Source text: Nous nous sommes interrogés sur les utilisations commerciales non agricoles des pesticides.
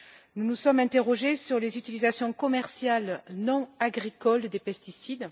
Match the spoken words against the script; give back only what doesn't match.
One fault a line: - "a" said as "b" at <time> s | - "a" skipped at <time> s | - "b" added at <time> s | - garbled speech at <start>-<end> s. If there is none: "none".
none